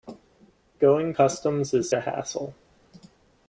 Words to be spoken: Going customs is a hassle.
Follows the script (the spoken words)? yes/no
yes